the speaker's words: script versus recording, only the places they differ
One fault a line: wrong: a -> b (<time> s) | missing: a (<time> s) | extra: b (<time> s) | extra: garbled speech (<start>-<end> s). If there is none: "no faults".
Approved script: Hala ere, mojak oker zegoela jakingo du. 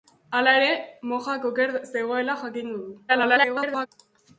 extra: garbled speech (3.1-3.9 s)